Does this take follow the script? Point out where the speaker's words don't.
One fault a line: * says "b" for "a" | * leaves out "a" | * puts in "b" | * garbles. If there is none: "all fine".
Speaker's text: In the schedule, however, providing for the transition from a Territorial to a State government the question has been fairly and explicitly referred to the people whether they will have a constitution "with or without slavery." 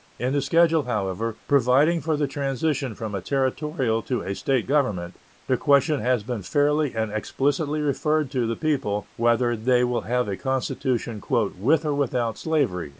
all fine